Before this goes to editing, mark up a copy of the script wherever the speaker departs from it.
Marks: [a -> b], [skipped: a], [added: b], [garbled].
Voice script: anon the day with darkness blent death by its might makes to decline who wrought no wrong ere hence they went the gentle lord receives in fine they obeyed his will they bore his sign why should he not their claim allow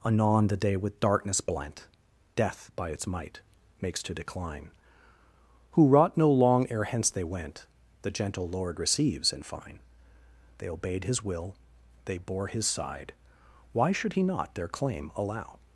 anon the day with darkness blent death by its might makes to decline who wrought no [wrong -> long] ere hence they went the gentle lord receives in fine they obeyed his will they bore his [sign -> side] why should he not their claim allow